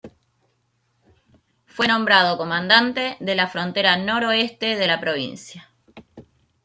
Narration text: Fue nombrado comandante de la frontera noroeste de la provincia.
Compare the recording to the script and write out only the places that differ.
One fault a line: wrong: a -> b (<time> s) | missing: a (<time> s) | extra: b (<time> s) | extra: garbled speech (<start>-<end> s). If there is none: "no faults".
no faults